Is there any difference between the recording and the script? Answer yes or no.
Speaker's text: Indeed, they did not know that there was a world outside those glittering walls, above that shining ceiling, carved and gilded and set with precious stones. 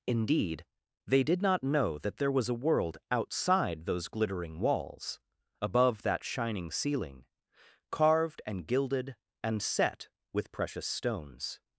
no